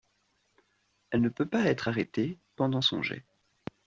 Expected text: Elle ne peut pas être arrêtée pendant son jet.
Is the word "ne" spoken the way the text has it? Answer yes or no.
yes